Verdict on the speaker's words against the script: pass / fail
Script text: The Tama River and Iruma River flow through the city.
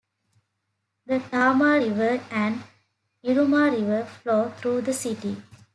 pass